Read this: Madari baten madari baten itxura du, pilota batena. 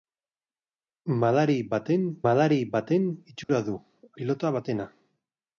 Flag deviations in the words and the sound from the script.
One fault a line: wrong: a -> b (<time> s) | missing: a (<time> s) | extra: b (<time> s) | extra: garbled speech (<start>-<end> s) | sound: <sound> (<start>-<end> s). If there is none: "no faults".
sound: dropout (3.4-3.5 s)